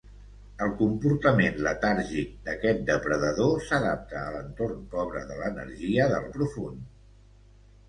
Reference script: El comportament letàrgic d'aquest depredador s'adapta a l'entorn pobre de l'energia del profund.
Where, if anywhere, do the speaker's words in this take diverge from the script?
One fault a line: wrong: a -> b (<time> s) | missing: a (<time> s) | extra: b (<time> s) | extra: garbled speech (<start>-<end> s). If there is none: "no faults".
no faults